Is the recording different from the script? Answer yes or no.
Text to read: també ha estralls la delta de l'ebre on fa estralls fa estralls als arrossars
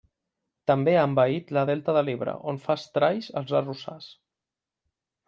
yes